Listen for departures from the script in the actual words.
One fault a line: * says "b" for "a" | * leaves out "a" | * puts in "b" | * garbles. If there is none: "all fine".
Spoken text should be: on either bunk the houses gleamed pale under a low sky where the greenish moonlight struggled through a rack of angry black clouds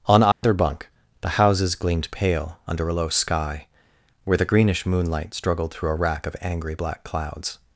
all fine